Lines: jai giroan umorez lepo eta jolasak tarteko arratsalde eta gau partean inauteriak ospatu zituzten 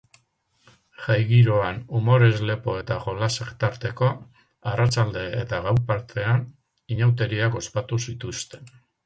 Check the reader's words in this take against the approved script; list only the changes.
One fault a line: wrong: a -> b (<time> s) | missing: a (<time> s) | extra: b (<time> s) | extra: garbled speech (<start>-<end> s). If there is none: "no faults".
no faults